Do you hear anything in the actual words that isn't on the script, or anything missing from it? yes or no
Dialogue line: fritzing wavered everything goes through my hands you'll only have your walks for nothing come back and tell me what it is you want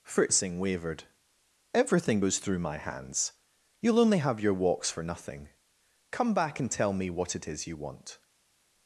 no